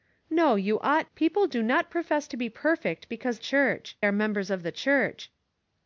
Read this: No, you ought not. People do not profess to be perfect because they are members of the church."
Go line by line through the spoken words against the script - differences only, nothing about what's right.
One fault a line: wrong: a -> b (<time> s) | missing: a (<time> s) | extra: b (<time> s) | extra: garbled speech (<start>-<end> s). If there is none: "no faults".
missing: not (1.1 s)
wrong: they -> church (3.4 s)